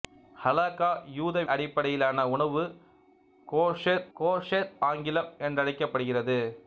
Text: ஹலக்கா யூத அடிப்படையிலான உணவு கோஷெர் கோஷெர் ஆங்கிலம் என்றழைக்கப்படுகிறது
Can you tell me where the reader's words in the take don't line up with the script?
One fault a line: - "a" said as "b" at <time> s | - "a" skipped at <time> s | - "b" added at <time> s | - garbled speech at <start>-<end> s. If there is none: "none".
none